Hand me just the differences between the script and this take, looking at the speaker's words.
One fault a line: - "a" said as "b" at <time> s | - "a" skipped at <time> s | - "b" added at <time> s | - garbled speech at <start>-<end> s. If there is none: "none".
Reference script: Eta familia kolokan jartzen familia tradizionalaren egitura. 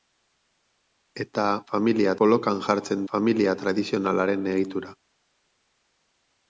none